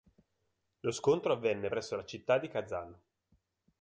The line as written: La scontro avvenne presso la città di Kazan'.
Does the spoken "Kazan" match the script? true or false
true